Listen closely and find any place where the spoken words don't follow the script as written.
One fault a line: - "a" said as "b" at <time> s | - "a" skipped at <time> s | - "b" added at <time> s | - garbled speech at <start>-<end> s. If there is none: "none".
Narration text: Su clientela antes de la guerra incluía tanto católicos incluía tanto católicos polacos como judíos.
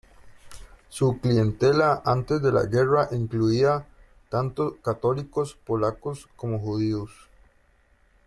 - "incluía tanto católicos" skipped at 5.5 s